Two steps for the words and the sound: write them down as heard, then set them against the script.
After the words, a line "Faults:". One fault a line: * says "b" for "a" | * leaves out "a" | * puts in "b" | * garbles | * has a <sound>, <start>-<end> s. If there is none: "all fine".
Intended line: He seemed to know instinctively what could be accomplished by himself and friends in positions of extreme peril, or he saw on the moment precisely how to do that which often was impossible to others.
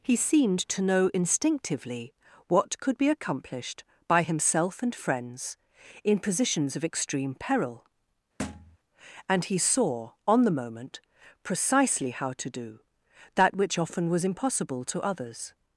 He seemed to know instinctively what could be accomplished by himself and friends in positions of extreme peril, and he saw on the moment precisely how to do that which often was impossible to others.
Faults:
* has a thud, 8.4-8.8 s
* says "and" for "or"